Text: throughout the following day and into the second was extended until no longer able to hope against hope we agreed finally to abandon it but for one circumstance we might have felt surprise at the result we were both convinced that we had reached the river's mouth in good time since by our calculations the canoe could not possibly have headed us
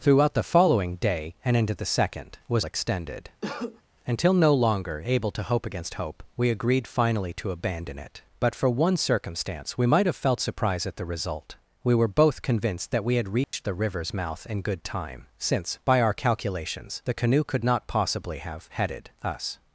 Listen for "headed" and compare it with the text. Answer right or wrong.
right